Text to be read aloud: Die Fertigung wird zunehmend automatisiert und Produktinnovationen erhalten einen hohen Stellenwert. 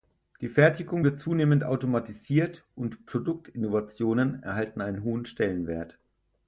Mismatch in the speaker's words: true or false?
false